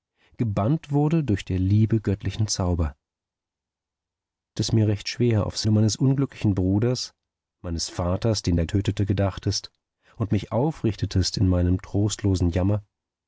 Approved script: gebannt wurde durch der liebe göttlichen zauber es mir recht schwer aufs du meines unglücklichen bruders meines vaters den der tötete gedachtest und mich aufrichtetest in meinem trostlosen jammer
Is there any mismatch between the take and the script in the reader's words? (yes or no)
no